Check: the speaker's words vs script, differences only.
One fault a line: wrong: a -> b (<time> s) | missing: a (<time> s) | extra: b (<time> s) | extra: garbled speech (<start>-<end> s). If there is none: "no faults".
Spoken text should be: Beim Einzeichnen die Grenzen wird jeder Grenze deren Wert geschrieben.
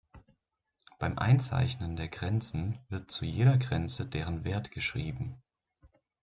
wrong: die -> der (1.9 s)
extra: zu (3.1 s)